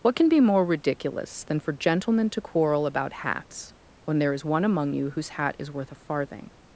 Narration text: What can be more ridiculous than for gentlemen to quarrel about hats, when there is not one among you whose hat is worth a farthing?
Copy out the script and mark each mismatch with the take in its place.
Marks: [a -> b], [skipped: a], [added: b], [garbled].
What can be more ridiculous than for gentlemen to quarrel about hats, when there is [skipped: not] one among you whose hat is worth a farthing?